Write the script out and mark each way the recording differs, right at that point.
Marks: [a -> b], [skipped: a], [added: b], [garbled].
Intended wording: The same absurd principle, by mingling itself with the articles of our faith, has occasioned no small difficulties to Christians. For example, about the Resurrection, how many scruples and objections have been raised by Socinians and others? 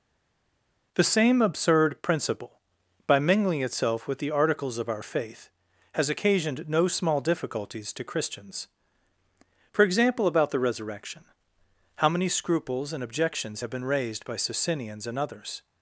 The same absurd principle, by mingling itself with the articles of our faith, has occasioned no small difficulties to Christians. For example, about the Resurrection, how many scruples and objections have been raised by Socinians and others?